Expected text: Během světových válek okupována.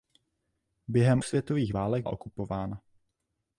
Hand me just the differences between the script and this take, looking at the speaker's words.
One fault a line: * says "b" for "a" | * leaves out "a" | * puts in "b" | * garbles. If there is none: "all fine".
all fine